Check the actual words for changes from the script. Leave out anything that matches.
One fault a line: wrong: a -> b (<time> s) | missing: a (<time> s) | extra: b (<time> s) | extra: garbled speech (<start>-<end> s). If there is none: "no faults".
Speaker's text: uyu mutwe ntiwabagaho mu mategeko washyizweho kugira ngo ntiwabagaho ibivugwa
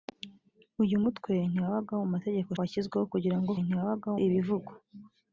no faults